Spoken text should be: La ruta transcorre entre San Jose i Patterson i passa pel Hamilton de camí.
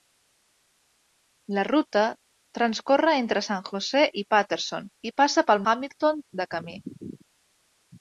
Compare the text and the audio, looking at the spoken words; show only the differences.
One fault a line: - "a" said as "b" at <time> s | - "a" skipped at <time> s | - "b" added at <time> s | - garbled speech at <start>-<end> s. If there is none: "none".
none